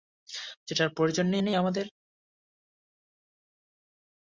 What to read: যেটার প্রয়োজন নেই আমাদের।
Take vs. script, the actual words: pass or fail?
fail